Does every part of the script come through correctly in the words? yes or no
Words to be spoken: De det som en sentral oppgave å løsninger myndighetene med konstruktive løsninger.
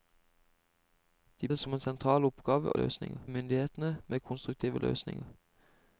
yes